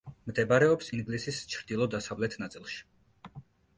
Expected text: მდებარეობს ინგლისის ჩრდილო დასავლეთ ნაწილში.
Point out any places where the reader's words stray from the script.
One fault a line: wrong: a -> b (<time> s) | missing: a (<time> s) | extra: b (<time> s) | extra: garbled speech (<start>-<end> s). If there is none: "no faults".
no faults